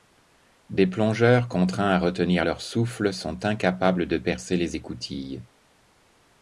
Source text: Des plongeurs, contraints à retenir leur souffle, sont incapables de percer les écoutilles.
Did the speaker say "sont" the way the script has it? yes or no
yes